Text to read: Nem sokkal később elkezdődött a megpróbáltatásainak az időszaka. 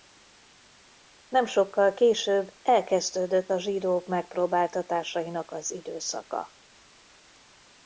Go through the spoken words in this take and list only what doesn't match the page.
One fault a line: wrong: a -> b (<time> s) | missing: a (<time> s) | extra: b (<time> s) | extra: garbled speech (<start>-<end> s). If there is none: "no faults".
extra: zsidók (3.6 s)